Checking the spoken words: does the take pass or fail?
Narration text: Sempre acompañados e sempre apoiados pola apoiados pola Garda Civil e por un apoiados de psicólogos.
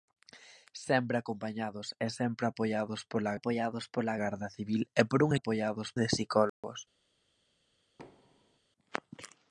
pass